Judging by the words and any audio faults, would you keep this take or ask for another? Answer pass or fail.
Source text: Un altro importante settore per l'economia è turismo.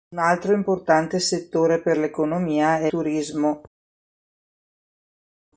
pass